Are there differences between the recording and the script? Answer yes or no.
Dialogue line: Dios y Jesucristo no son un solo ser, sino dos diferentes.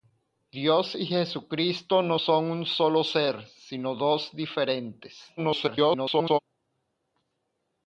yes